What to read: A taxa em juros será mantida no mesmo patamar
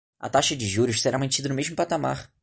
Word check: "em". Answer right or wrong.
wrong